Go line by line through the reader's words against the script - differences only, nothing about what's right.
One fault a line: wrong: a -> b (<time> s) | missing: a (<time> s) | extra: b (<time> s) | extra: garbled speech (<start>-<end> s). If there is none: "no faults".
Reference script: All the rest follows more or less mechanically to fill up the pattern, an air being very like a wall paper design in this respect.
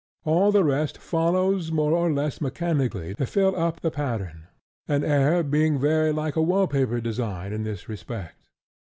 no faults